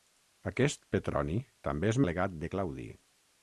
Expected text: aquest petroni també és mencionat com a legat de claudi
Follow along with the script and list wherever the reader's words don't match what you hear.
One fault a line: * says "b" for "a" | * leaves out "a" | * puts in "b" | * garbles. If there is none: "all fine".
* leaves out "mencionat com"